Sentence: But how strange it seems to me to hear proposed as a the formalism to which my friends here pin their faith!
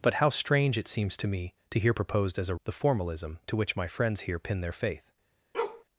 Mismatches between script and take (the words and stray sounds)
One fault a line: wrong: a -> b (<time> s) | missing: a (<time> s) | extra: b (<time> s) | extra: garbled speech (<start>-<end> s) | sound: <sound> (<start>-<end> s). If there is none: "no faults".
sound: bark (5.5-5.8 s)